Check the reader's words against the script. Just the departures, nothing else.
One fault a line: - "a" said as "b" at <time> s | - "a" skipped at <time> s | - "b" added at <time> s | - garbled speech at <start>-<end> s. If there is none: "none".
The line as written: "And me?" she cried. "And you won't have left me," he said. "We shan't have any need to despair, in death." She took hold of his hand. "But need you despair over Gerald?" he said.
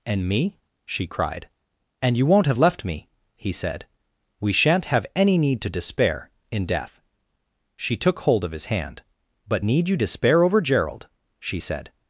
- "he" said as "she" at 11.4 s